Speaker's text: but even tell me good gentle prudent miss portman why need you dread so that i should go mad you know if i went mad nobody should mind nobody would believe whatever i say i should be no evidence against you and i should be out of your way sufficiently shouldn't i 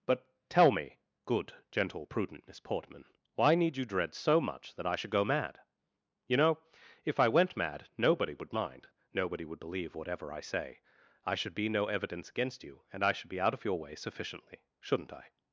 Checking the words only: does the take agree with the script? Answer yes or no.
no